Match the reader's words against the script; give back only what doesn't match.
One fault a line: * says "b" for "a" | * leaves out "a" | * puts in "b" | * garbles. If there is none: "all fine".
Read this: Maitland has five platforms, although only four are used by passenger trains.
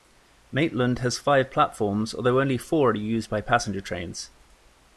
all fine